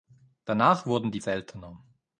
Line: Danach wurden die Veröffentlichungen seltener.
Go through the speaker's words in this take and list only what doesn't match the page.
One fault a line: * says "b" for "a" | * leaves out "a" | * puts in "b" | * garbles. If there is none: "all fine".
* leaves out "Veröffentlichungen"